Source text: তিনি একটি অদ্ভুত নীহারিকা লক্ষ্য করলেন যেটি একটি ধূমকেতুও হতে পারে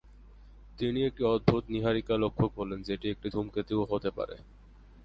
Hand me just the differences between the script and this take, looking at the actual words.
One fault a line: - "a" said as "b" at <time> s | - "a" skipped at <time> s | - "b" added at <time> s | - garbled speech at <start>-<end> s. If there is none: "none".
none